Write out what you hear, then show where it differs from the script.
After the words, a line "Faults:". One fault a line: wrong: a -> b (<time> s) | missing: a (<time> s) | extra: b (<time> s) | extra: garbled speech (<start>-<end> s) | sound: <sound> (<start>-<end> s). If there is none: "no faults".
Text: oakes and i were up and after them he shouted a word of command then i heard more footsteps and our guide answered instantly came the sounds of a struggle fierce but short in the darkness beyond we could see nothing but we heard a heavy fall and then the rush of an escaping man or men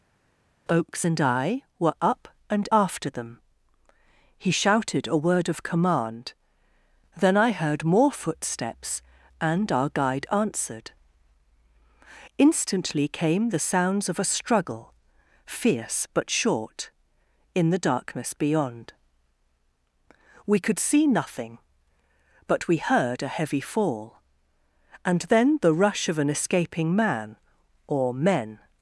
oakes and i were up and after them he shouted a word of command then i heard more footsteps and our guide answered instantly came the sounds of a struggle fierce but short in the darkness beyond we could see nothing but we heard a heavy fall and then the rush of an escaping man or men
Faults:
no faults